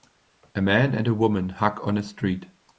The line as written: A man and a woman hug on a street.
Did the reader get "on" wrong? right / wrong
right